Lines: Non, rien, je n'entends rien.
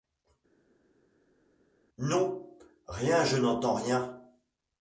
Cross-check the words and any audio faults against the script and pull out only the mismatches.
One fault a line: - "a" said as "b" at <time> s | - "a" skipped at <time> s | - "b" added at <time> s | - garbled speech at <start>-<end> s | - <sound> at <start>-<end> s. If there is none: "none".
none